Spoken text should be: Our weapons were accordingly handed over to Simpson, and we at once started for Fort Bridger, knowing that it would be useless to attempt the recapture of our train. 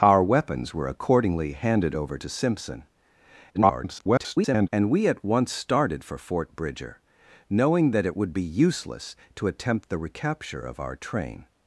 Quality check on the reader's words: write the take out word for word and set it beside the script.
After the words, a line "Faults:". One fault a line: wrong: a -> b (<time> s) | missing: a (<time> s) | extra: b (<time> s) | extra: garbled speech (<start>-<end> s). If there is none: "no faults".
Our weapons were accordingly handed over to Simpson, [garbled] and we at once started for Fort Bridger, knowing that it would be useless to attempt the recapture of our train.
Faults:
extra: garbled speech (3.5-4.7 s)